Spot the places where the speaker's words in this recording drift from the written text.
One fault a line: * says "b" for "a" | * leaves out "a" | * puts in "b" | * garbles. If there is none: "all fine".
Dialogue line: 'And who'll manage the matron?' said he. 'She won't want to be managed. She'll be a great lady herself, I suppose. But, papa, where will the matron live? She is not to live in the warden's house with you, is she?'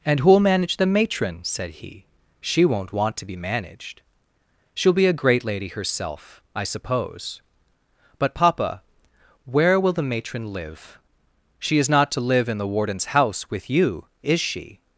all fine